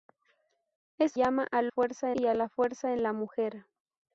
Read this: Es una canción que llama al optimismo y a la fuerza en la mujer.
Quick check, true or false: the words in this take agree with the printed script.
false